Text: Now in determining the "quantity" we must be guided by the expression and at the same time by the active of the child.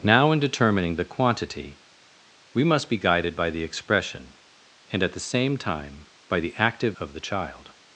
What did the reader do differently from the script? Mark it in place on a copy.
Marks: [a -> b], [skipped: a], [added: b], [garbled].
Now in determining the "quantity" we must be guided by the expression and at the same time by the active of the child.